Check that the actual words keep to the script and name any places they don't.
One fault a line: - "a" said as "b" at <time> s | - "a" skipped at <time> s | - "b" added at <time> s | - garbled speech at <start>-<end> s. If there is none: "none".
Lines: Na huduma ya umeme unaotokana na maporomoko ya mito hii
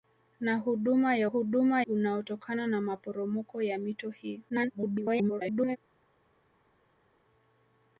- "umeme" said as "huduma" at 1.2 s
- garbled speech at 4.5-5.8 s